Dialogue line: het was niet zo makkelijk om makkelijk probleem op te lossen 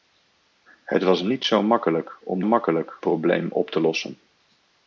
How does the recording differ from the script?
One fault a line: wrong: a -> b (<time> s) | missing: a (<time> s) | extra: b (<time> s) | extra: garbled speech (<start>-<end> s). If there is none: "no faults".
no faults